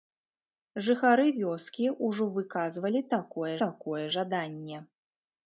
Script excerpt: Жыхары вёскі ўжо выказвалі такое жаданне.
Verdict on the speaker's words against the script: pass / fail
fail